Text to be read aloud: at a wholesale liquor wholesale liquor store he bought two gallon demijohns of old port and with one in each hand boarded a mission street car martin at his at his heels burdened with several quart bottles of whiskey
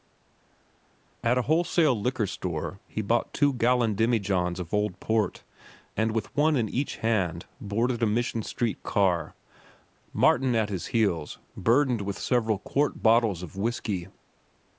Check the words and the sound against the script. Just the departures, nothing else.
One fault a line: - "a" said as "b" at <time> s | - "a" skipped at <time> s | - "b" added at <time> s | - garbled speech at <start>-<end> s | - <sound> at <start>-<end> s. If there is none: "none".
- "wholesale liquor" skipped at 2.3 s
- "at his" skipped at 10.9 s